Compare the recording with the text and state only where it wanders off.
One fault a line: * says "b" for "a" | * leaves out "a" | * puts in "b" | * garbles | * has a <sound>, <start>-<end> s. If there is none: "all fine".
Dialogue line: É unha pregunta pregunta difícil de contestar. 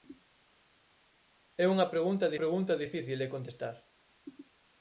all fine